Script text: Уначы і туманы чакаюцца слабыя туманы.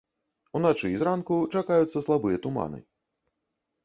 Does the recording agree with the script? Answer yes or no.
no